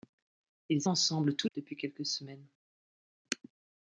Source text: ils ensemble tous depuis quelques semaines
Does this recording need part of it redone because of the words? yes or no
no